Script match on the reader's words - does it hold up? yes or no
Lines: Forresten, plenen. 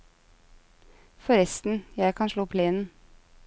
no